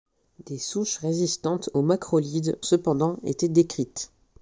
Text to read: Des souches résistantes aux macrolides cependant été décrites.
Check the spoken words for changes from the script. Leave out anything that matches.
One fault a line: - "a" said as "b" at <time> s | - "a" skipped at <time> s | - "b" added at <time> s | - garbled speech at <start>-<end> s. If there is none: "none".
none